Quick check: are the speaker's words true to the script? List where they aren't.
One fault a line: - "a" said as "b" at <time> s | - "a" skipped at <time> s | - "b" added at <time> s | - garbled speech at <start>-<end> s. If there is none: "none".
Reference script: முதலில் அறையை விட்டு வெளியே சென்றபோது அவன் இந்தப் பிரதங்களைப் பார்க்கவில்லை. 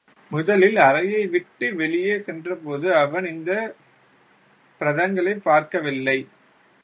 none